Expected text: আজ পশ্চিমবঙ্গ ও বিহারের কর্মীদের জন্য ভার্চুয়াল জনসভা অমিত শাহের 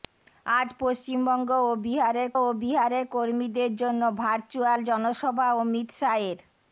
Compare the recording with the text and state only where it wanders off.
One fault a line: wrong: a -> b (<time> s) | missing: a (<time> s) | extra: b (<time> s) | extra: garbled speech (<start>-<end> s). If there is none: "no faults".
extra: ও বিহারের (2.4 s)